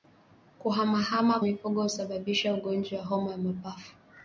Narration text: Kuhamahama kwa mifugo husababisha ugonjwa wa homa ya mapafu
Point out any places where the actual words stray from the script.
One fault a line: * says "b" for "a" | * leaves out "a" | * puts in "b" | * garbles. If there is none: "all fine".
* leaves out "kwa"